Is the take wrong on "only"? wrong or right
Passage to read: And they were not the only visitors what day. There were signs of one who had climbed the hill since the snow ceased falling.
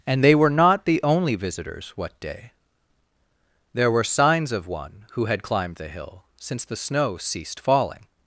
right